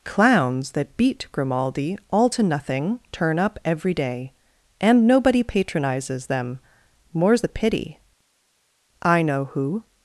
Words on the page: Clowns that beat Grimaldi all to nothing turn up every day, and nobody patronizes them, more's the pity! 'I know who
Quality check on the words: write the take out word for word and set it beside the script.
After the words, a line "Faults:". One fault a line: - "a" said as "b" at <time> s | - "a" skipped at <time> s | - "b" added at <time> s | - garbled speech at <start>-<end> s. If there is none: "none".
Clowns that beat Grimaldi all to nothing turn up every day, and nobody patronizes them, more's the pity! 'I know who
Faults:
none